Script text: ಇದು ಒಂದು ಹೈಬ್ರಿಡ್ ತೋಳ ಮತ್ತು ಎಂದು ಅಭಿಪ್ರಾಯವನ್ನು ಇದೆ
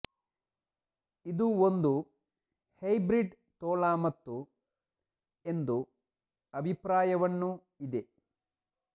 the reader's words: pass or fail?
pass